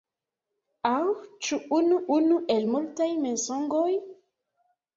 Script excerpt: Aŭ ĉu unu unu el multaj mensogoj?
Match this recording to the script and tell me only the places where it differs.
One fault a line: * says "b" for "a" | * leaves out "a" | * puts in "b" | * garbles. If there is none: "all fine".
all fine